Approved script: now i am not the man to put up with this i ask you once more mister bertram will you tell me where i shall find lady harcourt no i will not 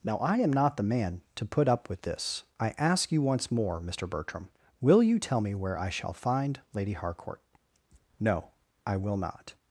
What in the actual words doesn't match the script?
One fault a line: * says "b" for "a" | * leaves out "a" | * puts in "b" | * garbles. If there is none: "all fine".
all fine